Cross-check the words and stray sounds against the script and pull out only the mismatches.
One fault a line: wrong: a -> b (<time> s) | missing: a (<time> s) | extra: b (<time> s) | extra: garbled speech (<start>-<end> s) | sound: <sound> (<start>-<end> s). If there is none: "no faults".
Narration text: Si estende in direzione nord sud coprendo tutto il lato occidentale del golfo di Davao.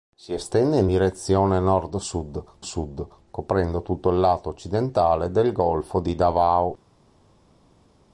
extra: sud (2.6 s)